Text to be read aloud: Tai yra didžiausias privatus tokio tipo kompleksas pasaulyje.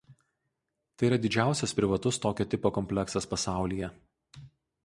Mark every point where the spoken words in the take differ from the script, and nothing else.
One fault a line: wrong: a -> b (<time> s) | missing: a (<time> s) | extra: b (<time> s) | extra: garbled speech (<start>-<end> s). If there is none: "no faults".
no faults